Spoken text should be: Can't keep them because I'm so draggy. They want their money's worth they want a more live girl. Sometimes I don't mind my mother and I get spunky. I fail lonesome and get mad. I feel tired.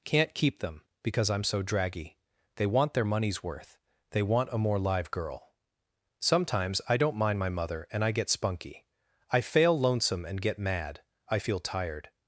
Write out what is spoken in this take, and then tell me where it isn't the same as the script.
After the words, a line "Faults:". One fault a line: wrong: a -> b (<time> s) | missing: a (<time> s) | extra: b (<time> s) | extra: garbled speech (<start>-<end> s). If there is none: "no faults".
Can't keep them because I'm so draggy. They want their money's worth they want a more live girl. Sometimes I don't mind my mother and I get spunky. I fail lonesome and get mad. I feel tired.
Faults:
no faults